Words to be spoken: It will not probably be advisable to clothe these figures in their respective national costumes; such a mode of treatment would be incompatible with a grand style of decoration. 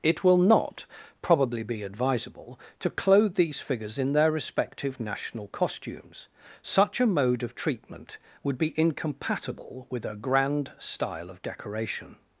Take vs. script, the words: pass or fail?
pass